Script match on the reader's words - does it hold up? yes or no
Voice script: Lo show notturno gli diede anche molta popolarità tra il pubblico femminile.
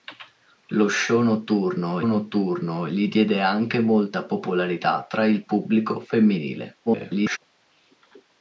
no